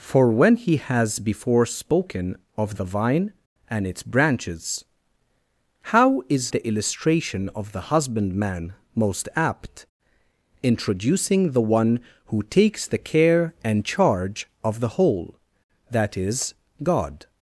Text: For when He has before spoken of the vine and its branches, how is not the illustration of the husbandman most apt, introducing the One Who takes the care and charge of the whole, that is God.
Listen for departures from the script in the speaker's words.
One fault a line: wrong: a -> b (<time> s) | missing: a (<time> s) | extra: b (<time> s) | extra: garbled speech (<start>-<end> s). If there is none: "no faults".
missing: not (6.5 s)